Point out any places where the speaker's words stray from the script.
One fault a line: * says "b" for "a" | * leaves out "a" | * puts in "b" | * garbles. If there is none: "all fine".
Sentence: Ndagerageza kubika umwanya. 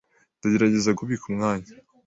all fine